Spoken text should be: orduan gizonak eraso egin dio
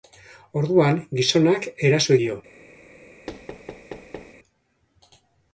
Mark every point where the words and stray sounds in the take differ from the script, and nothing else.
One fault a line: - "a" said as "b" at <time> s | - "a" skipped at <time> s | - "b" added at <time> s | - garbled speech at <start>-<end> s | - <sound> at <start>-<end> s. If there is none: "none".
- "egin" skipped at 2.2 s
- thud at 3.3-4.4 s